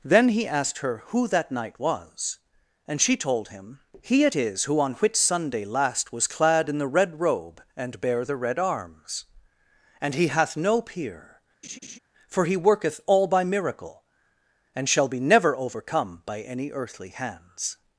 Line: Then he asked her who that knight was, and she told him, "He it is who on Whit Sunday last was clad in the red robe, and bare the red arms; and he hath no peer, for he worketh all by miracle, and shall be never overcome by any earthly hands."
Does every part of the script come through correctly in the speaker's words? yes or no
yes